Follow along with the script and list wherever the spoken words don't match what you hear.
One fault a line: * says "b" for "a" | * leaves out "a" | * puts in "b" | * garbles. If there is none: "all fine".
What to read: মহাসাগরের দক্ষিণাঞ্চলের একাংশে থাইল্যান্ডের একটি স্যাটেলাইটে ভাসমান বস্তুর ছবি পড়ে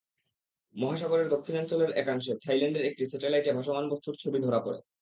* puts in "ধরা"